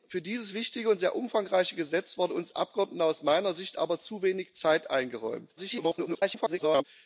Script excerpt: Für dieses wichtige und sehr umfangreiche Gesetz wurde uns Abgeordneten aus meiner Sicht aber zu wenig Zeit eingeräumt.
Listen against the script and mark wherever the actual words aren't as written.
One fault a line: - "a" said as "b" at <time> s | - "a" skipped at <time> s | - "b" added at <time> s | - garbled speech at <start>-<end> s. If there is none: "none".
- garbled speech at 5.6-6.8 s